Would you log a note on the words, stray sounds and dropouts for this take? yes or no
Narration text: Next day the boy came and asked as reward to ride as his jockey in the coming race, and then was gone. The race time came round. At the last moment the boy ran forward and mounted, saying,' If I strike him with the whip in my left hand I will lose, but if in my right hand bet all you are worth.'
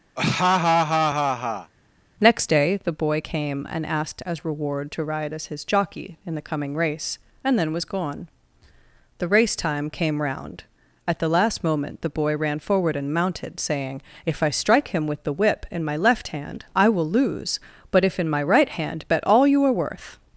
yes